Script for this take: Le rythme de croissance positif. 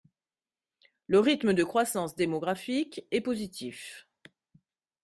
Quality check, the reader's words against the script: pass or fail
fail